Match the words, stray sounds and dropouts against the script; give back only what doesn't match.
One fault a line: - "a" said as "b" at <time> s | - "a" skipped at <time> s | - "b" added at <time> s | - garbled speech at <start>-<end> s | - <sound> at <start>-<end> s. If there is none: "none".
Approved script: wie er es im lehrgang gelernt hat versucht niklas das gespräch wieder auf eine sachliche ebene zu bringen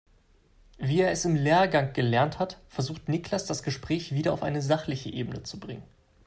none